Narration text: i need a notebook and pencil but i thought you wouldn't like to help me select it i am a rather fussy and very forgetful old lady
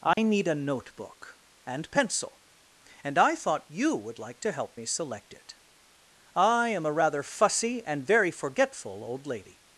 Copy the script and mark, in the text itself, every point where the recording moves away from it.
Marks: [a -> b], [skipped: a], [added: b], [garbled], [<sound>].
i [dropout] need a notebook and pencil [but -> and] i thought you [wouldn't -> would] like to help me select it i am a rather fussy and very forgetful old lady